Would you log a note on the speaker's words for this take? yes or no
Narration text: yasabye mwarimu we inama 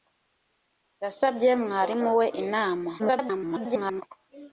yes